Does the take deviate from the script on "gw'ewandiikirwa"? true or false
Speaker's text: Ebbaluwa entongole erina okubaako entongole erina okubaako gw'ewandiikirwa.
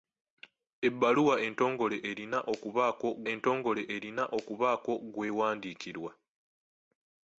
false